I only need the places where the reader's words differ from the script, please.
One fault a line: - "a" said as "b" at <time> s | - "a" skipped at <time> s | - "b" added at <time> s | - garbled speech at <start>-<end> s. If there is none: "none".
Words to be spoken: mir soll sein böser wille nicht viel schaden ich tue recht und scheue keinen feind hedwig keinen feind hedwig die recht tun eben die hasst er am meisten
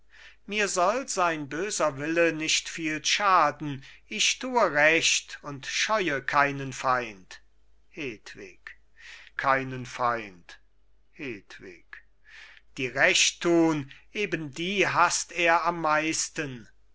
none